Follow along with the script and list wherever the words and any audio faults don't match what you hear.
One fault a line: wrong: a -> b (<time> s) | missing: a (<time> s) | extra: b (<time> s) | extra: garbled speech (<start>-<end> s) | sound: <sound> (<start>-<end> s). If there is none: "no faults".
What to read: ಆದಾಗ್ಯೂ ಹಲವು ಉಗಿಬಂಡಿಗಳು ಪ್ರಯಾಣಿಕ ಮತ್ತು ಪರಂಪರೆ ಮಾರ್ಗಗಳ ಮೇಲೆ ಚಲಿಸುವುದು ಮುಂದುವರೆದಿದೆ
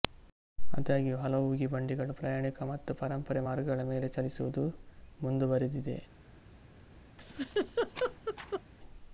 sound: laugh (7.2-8.6 s)